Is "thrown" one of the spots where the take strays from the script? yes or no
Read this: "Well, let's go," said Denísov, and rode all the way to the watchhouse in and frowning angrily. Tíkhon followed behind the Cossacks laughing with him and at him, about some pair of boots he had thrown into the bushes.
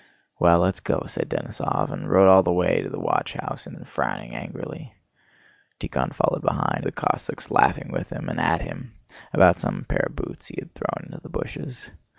no